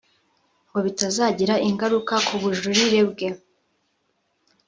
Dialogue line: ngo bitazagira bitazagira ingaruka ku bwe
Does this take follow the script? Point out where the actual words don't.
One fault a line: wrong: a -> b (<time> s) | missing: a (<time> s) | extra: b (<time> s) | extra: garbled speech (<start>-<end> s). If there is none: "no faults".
missing: bitazagira (1.6 s)
extra: bujurire (2.4 s)